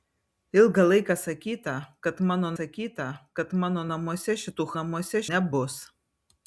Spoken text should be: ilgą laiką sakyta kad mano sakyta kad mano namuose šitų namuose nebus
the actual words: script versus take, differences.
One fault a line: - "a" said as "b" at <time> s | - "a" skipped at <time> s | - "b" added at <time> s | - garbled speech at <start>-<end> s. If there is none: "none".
none